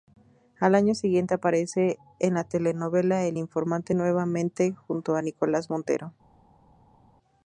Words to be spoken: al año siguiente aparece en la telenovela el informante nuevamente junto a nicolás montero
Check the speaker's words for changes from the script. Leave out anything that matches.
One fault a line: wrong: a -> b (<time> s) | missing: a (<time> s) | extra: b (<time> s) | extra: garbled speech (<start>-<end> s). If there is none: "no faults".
no faults